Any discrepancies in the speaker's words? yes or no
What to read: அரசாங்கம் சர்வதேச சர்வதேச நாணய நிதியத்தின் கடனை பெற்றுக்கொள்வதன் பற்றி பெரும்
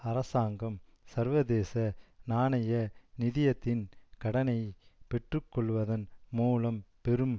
yes